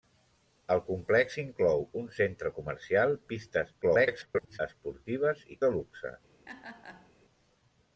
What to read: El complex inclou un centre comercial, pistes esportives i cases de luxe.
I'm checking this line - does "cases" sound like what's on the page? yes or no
no